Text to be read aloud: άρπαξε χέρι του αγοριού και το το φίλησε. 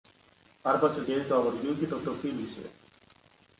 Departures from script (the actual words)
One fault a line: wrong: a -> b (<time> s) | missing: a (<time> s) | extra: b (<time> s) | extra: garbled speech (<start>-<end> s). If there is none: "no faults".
no faults